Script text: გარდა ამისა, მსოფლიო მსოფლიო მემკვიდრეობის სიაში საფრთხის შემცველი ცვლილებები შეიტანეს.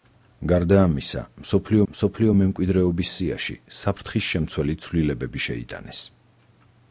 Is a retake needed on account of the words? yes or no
no